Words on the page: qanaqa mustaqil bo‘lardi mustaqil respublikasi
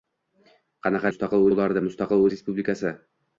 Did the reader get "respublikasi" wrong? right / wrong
right